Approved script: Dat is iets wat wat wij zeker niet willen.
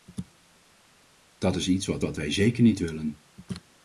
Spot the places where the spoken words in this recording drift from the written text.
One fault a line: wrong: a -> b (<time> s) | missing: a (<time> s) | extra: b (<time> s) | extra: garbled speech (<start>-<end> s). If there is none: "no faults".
no faults